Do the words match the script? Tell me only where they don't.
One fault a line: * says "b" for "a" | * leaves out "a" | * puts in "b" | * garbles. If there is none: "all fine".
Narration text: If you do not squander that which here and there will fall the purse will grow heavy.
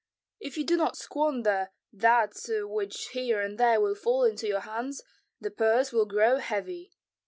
* puts in "into your hands"